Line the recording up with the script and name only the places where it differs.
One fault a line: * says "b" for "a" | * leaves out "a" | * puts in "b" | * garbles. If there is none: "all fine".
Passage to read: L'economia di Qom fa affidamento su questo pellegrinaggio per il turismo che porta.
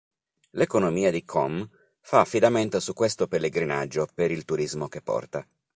all fine